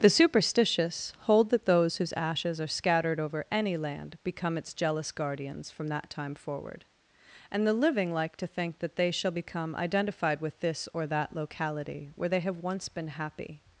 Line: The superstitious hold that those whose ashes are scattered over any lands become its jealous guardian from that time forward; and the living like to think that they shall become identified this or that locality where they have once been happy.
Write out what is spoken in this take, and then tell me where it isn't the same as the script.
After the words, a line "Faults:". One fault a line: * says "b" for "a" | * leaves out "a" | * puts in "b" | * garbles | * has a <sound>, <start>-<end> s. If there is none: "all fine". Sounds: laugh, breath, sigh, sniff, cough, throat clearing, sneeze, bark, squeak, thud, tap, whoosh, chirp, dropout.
The superstitious hold that those whose ashes are scattered over any land become its jealous guardians from that time forward; and the living like to think that they shall become identified with this or that locality where they have once been happy.
Faults:
* says "land" for "lands"
* says "guardians" for "guardian"
* puts in "with"